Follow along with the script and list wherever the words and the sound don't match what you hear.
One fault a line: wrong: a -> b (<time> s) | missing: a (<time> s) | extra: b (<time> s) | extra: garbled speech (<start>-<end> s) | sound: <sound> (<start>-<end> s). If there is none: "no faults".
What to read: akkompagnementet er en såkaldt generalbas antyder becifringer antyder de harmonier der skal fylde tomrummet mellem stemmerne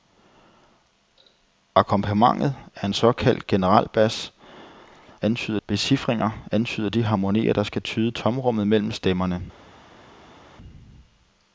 no faults